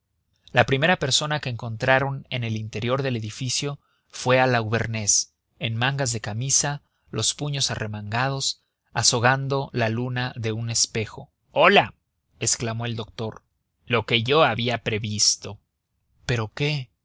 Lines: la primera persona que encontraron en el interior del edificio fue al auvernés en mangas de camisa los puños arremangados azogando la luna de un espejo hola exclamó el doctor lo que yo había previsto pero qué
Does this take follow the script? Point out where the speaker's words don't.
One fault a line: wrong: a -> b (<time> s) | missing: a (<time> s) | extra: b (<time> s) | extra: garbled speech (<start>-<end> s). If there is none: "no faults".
no faults